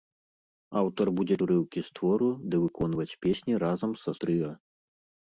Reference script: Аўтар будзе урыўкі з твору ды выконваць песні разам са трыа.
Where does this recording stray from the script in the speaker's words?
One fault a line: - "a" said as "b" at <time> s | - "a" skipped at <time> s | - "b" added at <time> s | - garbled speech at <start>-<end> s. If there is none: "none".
none